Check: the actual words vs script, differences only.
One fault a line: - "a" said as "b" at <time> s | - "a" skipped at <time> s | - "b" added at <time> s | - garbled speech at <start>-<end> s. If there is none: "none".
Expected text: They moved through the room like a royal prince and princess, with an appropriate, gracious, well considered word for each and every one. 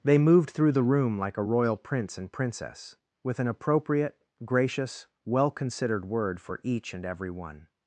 none